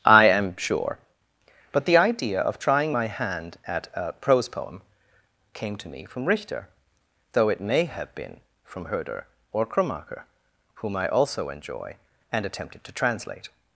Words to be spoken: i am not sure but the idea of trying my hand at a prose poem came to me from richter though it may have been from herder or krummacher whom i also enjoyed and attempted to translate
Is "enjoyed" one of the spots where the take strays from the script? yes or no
yes